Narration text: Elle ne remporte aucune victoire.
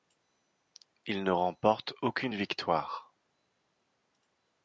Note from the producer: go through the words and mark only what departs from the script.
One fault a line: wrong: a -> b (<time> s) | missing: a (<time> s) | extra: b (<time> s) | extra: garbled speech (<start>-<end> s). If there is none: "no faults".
wrong: Elle -> Il (1.1 s)